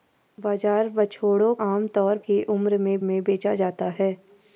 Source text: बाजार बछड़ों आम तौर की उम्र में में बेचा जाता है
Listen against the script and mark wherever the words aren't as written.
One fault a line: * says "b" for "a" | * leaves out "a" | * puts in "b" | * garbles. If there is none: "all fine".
all fine